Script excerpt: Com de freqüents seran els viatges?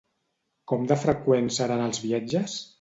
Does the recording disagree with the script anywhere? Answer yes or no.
no